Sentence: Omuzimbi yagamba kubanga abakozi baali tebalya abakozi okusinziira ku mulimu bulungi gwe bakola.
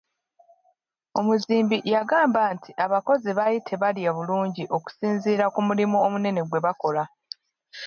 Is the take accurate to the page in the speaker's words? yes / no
no